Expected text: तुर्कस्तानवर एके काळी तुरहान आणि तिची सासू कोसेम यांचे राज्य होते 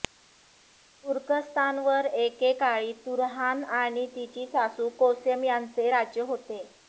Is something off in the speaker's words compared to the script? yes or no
no